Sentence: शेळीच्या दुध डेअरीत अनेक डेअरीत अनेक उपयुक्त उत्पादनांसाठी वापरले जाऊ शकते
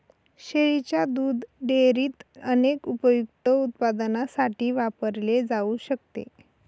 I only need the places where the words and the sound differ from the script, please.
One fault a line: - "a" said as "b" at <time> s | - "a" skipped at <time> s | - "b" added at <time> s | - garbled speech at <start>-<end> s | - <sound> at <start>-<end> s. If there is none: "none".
- "डेअरीत अनेक" skipped at 2.9 s